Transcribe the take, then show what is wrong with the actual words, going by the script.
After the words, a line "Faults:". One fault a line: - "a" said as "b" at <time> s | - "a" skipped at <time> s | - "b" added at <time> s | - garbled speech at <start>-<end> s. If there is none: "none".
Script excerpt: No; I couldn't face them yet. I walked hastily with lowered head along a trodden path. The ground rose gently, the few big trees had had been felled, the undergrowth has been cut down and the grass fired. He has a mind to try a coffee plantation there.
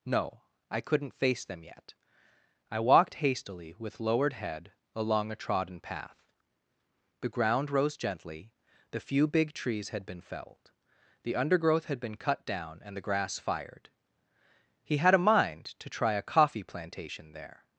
No; I couldn't face them yet. I walked hastily with lowered head along a trodden path. The ground rose gently, the few big trees had been felled, the undergrowth had been cut down and the grass fired. He had a mind to try a coffee plantation there.
Faults:
- "had" skipped at 10.1 s
- "has" said as "had" at 11.8 s
- "has" said as "had" at 15.0 s